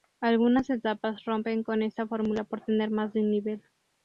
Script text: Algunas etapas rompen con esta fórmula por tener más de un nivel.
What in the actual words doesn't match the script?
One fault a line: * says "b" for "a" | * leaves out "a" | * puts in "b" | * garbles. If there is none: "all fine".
all fine